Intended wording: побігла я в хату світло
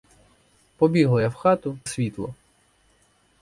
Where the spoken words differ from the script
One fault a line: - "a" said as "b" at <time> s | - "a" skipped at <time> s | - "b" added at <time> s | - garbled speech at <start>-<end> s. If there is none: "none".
none